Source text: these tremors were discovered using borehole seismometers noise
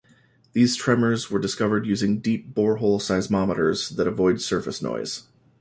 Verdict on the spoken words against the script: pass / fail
fail